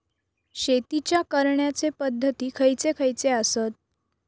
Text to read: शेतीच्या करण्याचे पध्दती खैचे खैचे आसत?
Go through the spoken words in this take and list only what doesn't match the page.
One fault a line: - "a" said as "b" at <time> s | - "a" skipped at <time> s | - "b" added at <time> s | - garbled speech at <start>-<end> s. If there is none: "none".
none